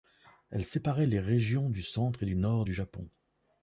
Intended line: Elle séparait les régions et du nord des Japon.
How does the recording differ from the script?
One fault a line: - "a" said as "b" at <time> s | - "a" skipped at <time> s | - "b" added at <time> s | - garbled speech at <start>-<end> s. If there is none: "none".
- "du centre" added at 1.7 s
- "des" said as "du" at 2.6 s